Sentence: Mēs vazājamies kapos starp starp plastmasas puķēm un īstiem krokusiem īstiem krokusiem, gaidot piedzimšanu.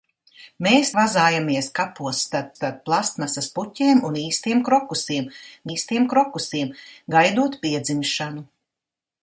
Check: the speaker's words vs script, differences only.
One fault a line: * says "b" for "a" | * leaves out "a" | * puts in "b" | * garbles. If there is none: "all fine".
all fine